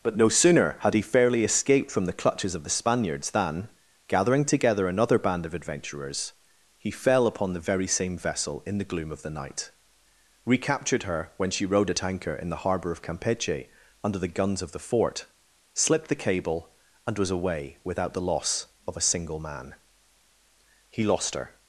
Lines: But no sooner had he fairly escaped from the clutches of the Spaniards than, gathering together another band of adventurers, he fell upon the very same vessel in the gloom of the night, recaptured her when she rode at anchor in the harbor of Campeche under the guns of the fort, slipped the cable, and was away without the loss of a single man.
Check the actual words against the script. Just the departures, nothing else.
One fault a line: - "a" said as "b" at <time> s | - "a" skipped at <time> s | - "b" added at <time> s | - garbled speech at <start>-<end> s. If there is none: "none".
- "He lost her" added at 20.9 s